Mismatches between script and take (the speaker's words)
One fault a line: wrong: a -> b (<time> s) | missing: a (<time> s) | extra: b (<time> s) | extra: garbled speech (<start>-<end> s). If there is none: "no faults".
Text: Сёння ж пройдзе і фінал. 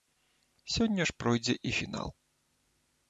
no faults